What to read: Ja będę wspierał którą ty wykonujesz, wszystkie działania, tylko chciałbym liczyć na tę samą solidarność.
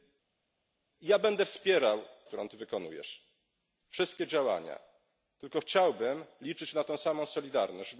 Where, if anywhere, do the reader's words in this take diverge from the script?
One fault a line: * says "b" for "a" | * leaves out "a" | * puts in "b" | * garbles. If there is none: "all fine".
all fine